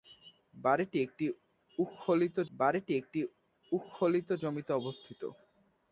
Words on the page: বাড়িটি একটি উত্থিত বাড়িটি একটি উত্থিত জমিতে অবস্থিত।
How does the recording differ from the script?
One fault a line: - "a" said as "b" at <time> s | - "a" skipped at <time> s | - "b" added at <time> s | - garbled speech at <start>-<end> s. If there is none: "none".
none